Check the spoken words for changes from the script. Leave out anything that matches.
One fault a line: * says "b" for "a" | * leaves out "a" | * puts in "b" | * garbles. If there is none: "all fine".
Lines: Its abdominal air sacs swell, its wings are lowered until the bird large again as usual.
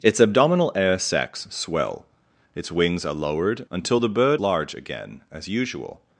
all fine